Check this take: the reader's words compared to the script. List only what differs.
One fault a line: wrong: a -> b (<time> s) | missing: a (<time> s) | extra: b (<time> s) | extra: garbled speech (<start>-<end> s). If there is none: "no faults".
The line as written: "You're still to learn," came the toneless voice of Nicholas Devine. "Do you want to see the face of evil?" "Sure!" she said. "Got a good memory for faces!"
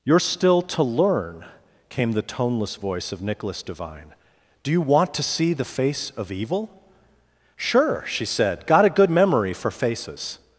no faults